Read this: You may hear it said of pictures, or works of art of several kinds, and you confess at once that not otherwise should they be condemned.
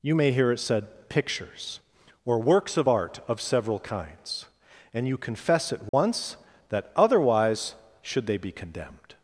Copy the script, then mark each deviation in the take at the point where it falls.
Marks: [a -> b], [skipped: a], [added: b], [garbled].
You may hear it said [skipped: of] pictures, or works of art of several kinds, and you confess at once that [skipped: not] otherwise should they be condemned.